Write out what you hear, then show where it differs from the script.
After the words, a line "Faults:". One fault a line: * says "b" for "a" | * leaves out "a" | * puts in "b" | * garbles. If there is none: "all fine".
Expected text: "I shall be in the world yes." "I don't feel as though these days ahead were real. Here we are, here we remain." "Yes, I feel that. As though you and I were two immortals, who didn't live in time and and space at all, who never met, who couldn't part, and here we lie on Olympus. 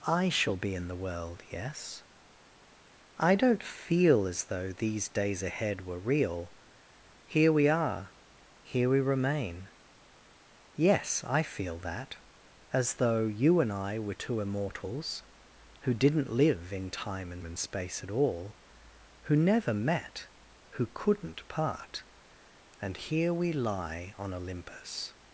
"I shall be in the world yes." "I don't feel as though these days ahead were real. Here we are, here we remain." "Yes, I feel that. As though you and I were two immortals, who didn't live in time and and space at all, who never met, who couldn't part, and here we lie on Olympus.
Faults:
all fine